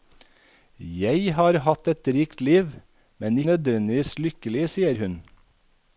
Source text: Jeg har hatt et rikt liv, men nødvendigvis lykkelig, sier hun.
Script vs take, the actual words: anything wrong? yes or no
no